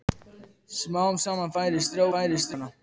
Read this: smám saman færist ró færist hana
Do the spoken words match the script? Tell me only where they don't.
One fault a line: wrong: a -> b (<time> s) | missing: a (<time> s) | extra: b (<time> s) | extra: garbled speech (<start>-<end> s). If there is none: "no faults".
no faults